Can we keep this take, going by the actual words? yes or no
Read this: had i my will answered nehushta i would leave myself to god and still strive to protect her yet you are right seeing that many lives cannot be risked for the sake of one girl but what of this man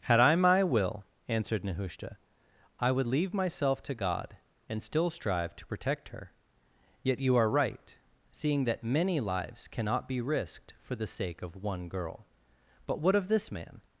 yes